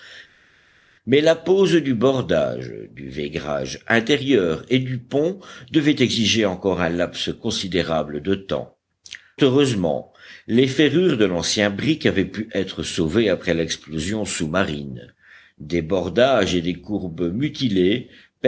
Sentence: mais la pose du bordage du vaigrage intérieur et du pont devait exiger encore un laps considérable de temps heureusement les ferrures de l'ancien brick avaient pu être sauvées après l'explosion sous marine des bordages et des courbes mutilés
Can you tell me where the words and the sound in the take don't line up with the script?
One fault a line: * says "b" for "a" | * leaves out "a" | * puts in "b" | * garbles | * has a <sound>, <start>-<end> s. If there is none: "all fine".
all fine